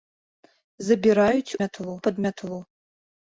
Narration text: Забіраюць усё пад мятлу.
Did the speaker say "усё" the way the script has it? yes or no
no